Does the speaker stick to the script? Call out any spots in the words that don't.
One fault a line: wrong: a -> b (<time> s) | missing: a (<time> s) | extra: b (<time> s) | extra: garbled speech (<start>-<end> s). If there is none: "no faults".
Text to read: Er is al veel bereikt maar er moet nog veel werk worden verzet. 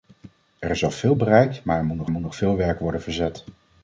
extra: moet nog (2.1 s)